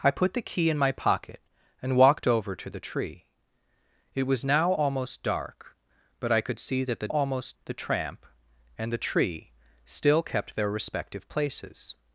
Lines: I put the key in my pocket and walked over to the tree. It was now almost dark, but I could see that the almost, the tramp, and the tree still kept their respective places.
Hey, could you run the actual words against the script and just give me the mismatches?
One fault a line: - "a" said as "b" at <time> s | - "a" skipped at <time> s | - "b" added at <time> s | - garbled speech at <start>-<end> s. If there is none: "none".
none